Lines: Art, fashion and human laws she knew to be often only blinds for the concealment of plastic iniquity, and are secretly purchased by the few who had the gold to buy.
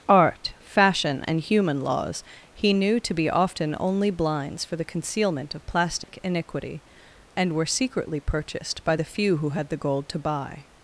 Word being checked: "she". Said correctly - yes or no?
no